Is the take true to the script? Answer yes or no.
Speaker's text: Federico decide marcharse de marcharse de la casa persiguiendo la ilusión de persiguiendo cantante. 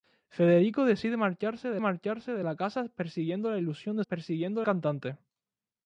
yes